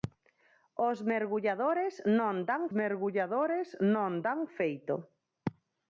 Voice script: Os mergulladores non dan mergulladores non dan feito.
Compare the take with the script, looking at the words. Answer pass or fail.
pass